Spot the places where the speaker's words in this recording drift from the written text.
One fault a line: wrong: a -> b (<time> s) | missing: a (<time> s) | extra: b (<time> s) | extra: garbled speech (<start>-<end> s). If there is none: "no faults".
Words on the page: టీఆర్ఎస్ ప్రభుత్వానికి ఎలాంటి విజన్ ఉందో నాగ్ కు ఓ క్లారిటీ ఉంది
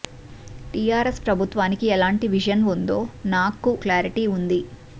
missing: ఓ (3.7 s)